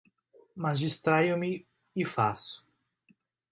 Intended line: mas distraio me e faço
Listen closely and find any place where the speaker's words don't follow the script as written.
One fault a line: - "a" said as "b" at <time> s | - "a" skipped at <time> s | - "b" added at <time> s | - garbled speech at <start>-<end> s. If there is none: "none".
none